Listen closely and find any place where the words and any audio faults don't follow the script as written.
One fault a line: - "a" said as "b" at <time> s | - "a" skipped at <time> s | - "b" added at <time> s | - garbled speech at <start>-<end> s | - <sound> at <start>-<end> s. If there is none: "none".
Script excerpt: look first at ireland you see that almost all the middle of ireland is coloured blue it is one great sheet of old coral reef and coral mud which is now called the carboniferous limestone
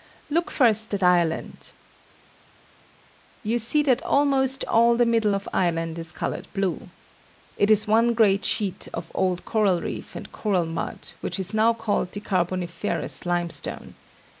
none